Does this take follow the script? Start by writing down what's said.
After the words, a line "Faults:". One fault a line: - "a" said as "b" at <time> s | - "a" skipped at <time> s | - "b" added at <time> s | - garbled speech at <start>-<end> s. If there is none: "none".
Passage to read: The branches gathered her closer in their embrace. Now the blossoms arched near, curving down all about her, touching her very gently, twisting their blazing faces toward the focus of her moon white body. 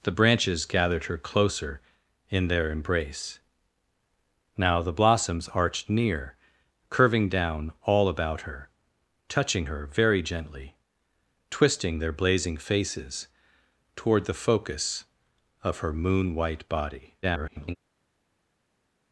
The branches gathered her closer in their embrace. Now the blossoms arched near, curving down all about her, touching her very gently, twisting their blazing faces toward the focus of her moon white body. [garbled]
Faults:
- garbled speech at 17.2-17.8 s